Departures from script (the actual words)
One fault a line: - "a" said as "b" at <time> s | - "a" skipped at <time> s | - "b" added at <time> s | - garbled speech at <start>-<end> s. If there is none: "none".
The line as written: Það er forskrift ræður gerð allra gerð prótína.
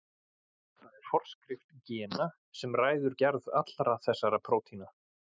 - "gena sem" added at 1.9 s
- "gerð" said as "þessara" at 4.1 s